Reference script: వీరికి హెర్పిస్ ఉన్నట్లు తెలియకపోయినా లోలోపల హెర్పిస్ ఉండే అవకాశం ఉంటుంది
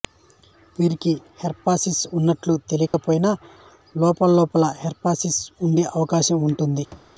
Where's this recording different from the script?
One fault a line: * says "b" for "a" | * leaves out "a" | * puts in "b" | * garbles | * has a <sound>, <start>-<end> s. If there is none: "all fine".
* has a dropout, 2.9-2.9 s
* has a thud, 6.9-7.1 s